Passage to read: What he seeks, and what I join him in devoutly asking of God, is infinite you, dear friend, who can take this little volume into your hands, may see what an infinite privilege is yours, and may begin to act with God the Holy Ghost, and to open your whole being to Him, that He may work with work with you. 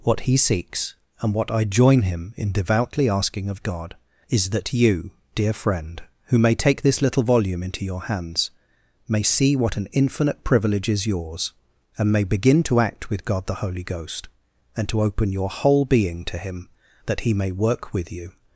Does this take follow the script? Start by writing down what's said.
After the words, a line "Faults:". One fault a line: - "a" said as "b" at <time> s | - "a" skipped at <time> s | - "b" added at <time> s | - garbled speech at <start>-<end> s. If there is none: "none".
What he seeks, and what I join him in devoutly asking of God, is that you, dear friend, who may take this little volume into your hands, may see what an infinite privilege is yours, and may begin to act with God the Holy Ghost, and to open your whole being to Him, that He may work with you.
Faults:
- "infinite" said as "that" at 4.5 s
- "can" said as "may" at 6.4 s
- "work with" skipped at 18.1 s